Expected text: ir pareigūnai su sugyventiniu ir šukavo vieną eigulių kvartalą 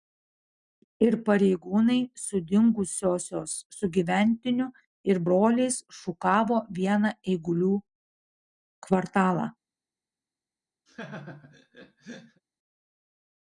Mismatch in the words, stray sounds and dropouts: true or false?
true